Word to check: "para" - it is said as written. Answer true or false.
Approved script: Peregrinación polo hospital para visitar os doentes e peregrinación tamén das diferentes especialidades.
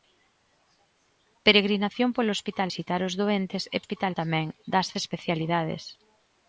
false